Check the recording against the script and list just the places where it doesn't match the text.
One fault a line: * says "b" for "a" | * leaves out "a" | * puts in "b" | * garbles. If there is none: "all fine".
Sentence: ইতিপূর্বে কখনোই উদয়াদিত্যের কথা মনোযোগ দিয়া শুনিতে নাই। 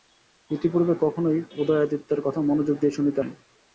all fine